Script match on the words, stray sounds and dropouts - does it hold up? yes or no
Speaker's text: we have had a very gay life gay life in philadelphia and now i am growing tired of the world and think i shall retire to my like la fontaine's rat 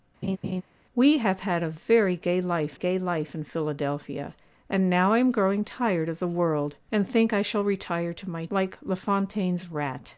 no